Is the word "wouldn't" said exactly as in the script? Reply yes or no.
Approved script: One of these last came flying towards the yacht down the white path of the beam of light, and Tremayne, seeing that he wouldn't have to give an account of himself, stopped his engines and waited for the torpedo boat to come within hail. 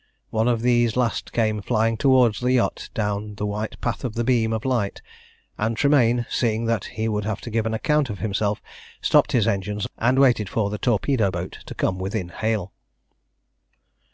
no